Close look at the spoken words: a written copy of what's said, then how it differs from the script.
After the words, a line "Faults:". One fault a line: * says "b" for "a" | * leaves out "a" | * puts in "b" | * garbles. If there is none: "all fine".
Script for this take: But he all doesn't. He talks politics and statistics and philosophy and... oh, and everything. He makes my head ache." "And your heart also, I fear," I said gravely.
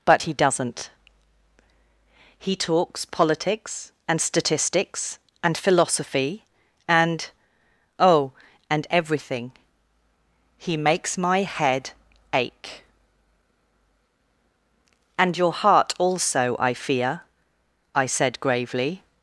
But he doesn't. He talks politics and statistics and philosophy and... oh, and everything. He makes my head ache." "And your heart also, I fear," I said gravely.
Faults:
* leaves out "all"